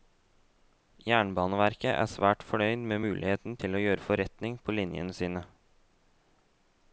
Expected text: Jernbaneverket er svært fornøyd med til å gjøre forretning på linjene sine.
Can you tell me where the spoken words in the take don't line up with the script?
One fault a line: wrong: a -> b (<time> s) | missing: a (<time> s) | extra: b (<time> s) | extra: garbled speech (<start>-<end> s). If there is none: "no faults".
extra: muligheten (3.0 s)